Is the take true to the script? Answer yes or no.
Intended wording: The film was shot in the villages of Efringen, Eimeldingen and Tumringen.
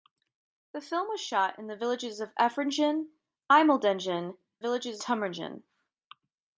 no